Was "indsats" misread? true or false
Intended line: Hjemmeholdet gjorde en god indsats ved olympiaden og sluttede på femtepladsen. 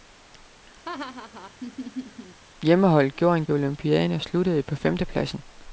true